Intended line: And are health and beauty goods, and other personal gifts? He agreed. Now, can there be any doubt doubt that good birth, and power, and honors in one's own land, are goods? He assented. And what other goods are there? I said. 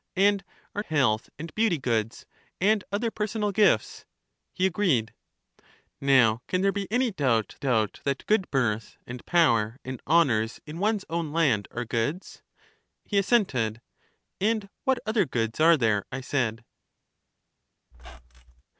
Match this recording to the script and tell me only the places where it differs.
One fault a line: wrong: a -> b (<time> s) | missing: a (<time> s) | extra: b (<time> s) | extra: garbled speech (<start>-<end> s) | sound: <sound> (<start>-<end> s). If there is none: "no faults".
sound: squeak (17.9-18.6 s)